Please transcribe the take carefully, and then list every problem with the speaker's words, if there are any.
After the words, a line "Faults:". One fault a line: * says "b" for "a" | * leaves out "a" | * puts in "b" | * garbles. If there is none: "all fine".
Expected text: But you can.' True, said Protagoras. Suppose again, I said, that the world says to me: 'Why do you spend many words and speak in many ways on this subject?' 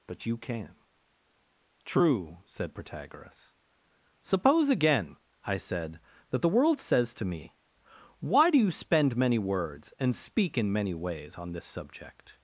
But you can.' True, said Protagoras. Suppose again, I said, that the world says to me: 'Why do you spend many words and speak in many ways on this subject?'
Faults:
all fine